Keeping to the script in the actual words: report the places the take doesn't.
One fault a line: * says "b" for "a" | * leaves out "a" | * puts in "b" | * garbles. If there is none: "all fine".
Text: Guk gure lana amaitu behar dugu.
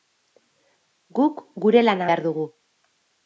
* leaves out "amaitu"